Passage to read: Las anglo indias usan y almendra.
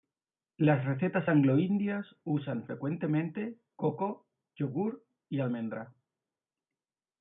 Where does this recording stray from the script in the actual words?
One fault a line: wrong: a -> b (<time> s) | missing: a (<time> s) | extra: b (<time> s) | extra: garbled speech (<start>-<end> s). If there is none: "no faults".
extra: recetas (0.8 s)
extra: frecuentemente coco yogur (2.7 s)